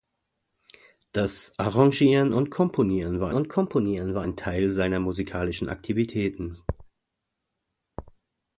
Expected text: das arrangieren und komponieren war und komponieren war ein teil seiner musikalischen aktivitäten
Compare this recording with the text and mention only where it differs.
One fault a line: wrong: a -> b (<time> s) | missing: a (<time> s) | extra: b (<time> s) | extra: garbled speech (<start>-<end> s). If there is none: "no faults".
no faults